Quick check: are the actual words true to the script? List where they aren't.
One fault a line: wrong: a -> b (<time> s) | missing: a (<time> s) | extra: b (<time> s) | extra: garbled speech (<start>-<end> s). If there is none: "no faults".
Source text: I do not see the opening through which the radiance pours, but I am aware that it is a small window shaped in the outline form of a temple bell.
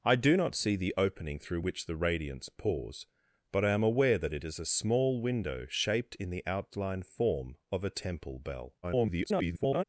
extra: garbled speech (8.8-9.8 s)